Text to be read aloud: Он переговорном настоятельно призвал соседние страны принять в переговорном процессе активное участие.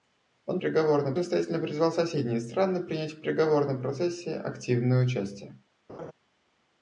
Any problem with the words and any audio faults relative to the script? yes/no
yes